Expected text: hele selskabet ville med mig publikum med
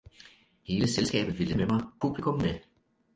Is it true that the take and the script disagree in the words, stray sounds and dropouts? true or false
false